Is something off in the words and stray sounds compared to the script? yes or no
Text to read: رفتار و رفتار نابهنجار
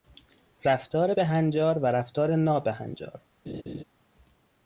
yes